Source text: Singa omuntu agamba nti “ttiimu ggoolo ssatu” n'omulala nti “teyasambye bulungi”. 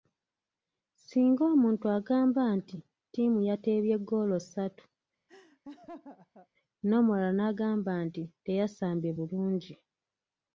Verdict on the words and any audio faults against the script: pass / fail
fail